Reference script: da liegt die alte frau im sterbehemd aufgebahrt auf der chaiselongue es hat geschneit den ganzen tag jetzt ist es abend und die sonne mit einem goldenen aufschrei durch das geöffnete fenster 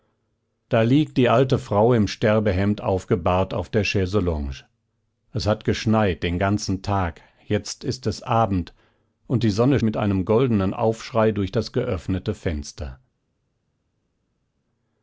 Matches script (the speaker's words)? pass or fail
pass